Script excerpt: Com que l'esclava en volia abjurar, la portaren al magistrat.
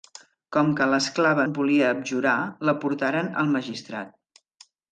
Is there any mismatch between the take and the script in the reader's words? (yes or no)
no